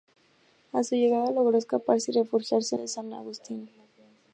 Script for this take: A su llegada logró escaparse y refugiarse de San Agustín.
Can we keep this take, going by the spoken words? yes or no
yes